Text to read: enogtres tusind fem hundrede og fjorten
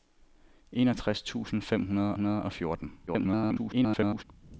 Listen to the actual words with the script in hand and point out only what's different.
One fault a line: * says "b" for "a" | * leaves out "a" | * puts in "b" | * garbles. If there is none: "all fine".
* puts in "hundrede"
* garbles